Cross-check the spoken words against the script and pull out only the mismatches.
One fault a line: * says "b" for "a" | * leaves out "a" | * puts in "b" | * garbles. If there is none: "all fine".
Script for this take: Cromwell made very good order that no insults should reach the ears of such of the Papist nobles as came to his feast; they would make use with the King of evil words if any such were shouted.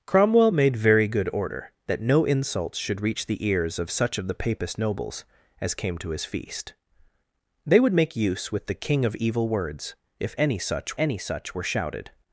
* puts in "any such"